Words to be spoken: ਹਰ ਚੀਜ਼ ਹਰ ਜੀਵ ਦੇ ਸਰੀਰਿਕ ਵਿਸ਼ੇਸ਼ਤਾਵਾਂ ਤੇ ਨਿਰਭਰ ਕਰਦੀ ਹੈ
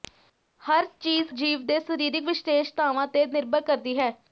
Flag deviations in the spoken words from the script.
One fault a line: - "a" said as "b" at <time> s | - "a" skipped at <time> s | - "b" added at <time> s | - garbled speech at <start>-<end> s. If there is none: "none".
- "ਹਰ" skipped at 1.3 s